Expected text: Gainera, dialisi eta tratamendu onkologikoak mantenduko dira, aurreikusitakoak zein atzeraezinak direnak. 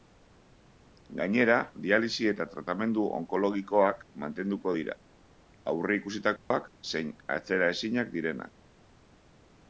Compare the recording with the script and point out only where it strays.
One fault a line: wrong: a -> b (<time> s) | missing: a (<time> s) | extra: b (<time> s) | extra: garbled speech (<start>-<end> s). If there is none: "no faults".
no faults